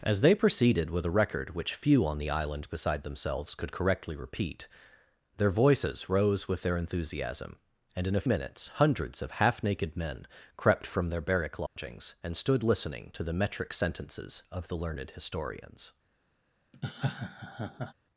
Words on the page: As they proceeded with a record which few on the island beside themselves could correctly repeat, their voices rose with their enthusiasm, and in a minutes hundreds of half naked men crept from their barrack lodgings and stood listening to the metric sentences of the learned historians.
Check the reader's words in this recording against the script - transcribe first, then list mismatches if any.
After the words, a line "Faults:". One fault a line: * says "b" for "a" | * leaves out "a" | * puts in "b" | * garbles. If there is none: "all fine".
As they proceeded with a record which few on the island beside themselves could correctly repeat, their voices rose with their enthusiasm, and in a minutes hundreds of half naked men crept from their barrack lodgings and stood listening to the metric sentences of the learned historians.
Faults:
all fine